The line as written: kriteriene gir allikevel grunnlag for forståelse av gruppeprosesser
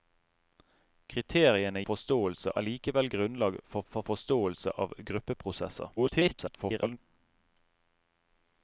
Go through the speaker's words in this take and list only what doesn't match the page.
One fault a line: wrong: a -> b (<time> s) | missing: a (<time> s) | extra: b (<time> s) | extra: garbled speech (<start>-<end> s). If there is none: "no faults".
wrong: gir -> forståelse (1.8 s)
extra: for (3.9 s)
extra: garbled speech (6.0-7.0 s)